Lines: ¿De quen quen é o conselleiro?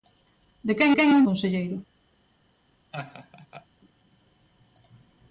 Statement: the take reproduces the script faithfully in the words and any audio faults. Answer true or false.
false